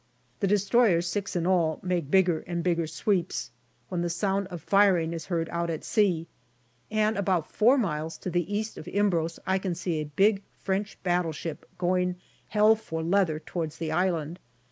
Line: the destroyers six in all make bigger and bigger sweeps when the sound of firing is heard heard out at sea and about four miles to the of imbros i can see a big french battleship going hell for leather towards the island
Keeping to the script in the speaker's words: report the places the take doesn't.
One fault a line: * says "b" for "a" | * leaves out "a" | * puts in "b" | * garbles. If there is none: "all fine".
* leaves out "heard"
* puts in "east"